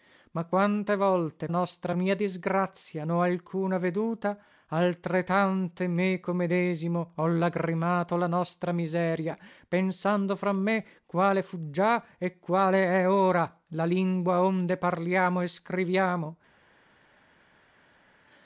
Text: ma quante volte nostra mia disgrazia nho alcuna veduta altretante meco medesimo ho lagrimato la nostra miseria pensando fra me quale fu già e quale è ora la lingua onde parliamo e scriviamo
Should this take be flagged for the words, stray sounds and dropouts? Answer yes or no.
no